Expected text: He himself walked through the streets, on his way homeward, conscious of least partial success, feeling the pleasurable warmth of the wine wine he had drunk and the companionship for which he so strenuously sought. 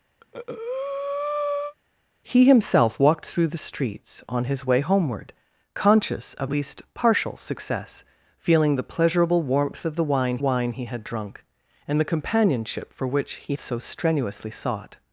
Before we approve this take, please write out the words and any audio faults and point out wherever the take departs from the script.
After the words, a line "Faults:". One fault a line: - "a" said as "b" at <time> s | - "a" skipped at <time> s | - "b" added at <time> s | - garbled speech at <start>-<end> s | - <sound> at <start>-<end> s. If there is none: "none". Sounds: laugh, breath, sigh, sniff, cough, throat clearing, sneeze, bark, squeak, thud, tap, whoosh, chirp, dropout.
He himself walked through the streets, on his way homeward, conscious of least partial success, feeling the pleasurable warmth of the wine wine he had drunk and the companionship for which he so strenuously sought.
Faults:
- breath at 0.2-1.7 s